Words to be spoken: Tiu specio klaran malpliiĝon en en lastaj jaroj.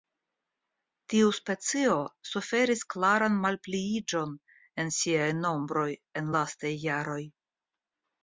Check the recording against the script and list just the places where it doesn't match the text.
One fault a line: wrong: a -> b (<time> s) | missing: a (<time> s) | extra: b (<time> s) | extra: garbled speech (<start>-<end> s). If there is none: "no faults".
extra: suferis (2.3 s)
extra: siaj nombroj (5.0 s)